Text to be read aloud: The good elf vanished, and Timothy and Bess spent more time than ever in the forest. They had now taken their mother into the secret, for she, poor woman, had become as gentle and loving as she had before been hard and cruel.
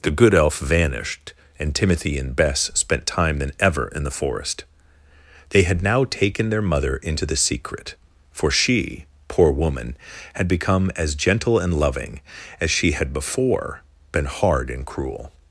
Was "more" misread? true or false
true